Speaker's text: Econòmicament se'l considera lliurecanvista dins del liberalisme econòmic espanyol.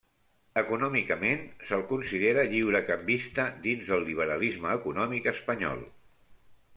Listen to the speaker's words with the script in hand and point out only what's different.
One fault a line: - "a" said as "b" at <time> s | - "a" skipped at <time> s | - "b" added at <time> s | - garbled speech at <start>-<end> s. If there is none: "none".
none